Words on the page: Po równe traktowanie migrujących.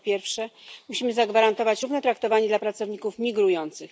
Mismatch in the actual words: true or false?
true